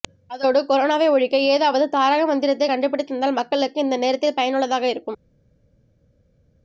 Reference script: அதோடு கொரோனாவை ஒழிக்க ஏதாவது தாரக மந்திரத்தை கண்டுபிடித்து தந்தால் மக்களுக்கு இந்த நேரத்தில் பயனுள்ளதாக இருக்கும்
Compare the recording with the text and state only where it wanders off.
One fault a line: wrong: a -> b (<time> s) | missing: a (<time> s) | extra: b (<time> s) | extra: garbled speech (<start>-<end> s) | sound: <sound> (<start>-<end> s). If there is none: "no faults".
no faults